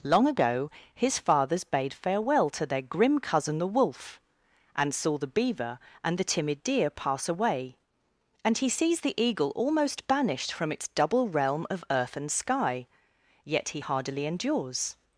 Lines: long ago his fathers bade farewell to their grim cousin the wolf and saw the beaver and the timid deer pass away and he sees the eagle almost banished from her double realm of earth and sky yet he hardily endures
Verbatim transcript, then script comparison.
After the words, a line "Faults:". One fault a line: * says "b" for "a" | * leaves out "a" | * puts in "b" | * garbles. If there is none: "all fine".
long ago his fathers bade farewell to their grim cousin the wolf and saw the beaver and the timid deer pass away and he sees the eagle almost banished from its double realm of earth and sky yet he hardily endures
Faults:
* says "its" for "her"